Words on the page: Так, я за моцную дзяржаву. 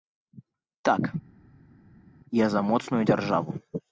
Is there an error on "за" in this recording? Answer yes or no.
no